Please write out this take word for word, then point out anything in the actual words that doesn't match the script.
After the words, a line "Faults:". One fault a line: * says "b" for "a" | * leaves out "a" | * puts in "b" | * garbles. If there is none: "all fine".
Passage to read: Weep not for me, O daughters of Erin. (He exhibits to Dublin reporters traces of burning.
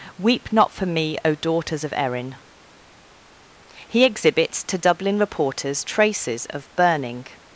Weep not for me, O daughters of Erin. (He exhibits to Dublin reporters traces of burning.
Faults:
all fine